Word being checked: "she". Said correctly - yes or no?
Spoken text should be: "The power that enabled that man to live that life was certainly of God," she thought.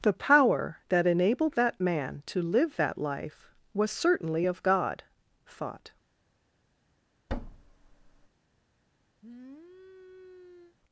no